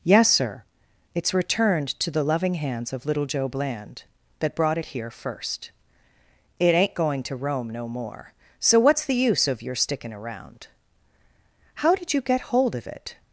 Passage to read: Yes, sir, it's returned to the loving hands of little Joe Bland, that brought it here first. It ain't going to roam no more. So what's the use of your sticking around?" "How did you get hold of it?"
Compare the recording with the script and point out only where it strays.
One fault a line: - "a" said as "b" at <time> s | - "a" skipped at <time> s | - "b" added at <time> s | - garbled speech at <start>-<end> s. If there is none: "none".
none